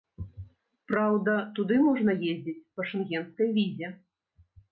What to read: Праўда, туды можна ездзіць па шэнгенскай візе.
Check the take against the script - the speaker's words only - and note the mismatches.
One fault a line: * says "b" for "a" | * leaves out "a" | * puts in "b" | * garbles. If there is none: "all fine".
all fine